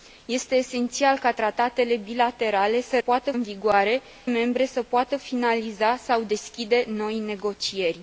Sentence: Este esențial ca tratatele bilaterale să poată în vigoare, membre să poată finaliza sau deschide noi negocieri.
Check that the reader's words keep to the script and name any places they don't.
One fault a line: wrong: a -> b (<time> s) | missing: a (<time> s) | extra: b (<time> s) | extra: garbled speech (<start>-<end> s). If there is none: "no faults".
no faults